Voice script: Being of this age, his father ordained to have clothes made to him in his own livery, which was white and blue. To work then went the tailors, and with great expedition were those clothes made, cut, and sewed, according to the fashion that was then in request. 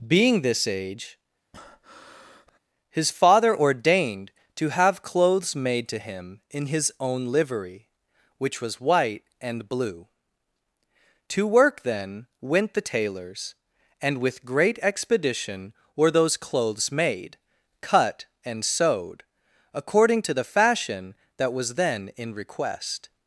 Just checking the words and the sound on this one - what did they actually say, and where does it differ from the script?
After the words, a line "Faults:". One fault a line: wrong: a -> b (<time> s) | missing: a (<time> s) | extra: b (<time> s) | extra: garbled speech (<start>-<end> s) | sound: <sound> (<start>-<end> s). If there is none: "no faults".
Being this age, his father ordained to have clothes made to him in his own livery, which was white and blue. To work then went the tailors, and with great expedition were those clothes made, cut, and sewed, according to the fashion that was then in request.
Faults:
missing: of (0.4 s)
sound: breath (1.5-2.6 s)